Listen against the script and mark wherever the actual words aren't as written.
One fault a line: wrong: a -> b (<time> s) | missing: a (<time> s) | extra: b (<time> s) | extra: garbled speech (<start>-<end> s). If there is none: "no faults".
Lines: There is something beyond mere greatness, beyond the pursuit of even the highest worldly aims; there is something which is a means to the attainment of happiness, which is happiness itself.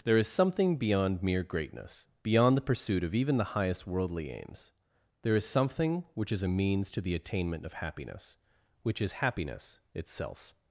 no faults